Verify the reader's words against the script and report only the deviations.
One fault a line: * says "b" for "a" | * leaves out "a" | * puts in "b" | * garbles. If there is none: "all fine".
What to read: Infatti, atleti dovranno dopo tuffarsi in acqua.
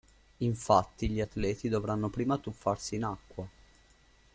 * puts in "gli"
* says "prima" for "dopo"